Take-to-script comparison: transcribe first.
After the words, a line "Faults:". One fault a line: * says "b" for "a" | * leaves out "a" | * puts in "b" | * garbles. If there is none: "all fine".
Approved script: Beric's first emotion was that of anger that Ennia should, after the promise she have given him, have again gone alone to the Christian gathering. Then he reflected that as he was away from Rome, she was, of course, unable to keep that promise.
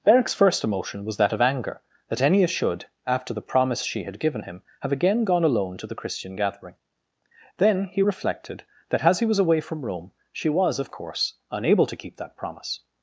Beric's first emotion was that of anger that Ennia should, after the promise she had given him, have again gone alone to the Christian gathering. Then he reflected that as he was away from Rome, she was, of course, unable to keep that promise.
Faults:
* says "had" for "have"